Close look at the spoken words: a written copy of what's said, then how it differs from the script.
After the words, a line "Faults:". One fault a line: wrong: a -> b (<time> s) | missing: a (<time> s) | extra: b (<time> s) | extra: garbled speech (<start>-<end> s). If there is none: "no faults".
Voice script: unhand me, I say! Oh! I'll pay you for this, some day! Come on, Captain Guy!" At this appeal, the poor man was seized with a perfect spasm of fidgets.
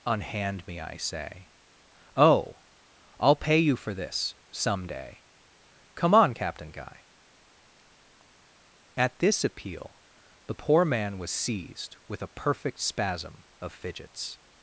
unhand me, I say! Oh! I'll pay you for this, some day! Come on, Captain Guy!" At this appeal, the poor man was seized with a perfect spasm of fidgets.
Faults:
no faults